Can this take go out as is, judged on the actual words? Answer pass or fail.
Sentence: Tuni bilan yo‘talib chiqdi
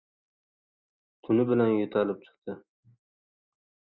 pass